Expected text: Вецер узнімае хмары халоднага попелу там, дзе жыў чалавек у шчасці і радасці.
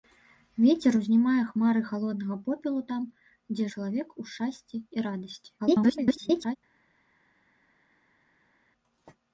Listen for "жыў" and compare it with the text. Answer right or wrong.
wrong